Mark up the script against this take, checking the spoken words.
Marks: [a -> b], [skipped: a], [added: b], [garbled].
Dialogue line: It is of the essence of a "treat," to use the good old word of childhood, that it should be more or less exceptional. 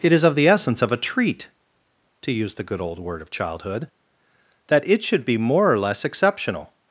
It is of the essence of a "treat," to use the good old word of childhood, that it should be more or less exceptional.